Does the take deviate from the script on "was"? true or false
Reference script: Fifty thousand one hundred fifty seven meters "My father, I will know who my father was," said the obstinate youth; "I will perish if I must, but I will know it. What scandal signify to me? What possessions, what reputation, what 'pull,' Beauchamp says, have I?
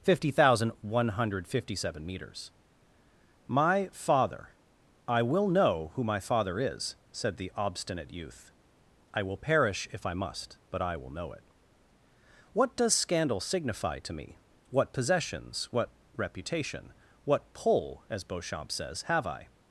true